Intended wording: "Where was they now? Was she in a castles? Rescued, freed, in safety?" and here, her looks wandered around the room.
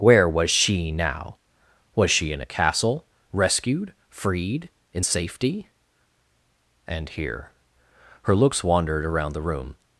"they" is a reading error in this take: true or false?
true